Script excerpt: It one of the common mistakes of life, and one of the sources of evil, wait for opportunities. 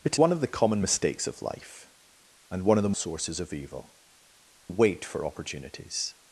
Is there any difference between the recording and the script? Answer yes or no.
no